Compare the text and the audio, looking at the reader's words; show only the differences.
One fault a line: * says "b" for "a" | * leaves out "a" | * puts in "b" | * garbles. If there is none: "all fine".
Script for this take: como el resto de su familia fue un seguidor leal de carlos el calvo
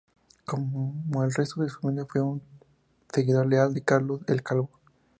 all fine